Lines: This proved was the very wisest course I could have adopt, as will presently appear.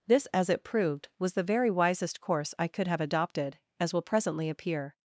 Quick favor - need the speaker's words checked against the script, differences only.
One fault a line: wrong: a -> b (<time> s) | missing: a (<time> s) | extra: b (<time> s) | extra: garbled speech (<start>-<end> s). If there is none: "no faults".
extra: as it (0.3 s)
wrong: adopt -> adopted (3.0 s)